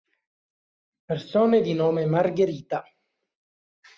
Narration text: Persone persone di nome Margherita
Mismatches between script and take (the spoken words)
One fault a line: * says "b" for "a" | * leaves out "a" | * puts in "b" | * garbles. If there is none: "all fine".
* leaves out "persone"